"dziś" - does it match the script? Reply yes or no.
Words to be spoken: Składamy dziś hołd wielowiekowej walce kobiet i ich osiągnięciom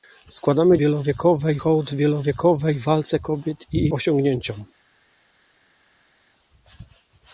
no